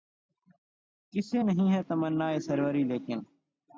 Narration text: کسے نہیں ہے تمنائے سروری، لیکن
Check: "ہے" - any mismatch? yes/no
no